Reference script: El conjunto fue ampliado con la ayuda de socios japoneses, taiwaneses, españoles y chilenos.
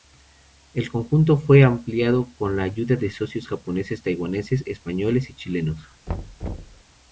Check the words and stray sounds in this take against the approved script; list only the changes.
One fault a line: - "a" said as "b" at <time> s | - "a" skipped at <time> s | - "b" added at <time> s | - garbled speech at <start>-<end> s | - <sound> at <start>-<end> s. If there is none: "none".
- thud at 6.1-6.8 s